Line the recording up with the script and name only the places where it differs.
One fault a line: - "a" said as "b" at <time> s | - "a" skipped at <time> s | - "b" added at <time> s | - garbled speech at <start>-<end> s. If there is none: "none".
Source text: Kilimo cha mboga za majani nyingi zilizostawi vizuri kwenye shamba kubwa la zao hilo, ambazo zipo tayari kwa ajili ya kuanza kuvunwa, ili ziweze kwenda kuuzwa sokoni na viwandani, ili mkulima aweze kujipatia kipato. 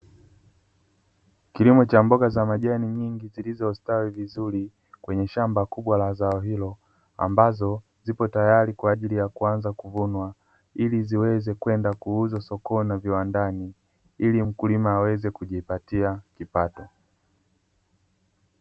none